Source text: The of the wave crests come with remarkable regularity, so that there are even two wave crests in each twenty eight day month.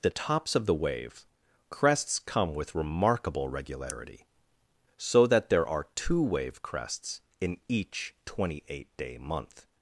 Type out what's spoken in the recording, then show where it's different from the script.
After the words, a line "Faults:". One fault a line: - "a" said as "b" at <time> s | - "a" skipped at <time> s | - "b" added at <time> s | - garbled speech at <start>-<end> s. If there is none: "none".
The tops of the wave crests come with remarkable regularity, so that there are two wave crests in each twenty eight day month.
Faults:
- "tops" added at 0.1 s
- "even" skipped at 5.9 s